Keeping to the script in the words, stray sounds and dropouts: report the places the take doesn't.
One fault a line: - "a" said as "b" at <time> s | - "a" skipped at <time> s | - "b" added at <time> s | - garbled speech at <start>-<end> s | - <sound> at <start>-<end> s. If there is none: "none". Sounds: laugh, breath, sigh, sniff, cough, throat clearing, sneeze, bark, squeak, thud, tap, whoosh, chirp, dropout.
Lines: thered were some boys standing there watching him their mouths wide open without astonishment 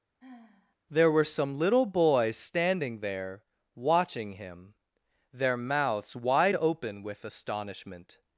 - sigh at 0.2-0.8 s
- "thered" said as "there" at 0.9 s
- "little" added at 1.6 s
- "without" said as "with" at 7.0 s